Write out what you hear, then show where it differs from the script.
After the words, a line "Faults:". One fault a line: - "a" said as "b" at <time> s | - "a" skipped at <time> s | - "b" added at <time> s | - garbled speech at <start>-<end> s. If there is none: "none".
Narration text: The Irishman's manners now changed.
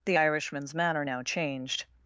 The Irishman's manner now changed.
Faults:
- "manners" said as "manner" at 0.7 s